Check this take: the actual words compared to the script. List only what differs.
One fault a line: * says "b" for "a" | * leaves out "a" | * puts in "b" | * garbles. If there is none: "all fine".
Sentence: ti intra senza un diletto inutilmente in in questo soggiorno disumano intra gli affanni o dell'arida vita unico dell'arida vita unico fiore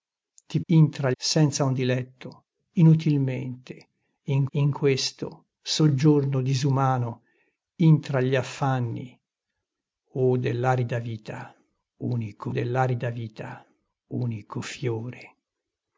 all fine